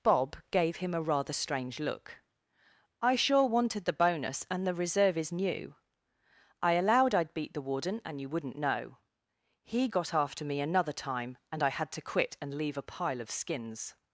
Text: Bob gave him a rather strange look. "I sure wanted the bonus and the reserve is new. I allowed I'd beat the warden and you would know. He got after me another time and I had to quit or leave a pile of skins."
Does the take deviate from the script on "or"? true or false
true